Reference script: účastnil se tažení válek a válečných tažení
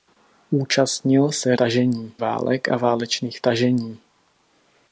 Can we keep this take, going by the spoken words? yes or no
yes